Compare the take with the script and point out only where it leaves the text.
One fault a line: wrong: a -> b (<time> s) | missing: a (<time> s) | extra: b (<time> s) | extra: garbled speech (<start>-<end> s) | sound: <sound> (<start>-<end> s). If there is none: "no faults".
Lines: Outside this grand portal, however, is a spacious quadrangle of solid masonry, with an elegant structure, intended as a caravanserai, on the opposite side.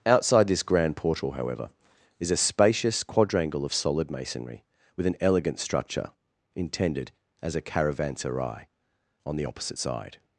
no faults